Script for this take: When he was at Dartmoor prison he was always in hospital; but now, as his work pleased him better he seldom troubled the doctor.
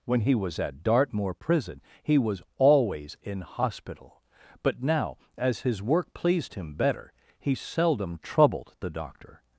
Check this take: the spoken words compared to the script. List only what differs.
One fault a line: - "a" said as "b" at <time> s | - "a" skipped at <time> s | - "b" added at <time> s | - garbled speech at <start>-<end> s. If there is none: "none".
none